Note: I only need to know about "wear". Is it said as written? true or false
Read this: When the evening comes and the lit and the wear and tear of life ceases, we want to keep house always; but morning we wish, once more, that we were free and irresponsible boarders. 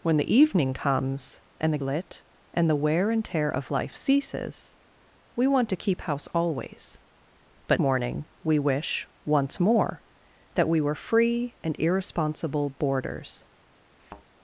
true